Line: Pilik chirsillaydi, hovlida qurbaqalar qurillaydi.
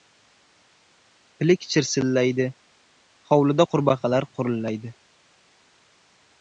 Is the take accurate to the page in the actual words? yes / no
yes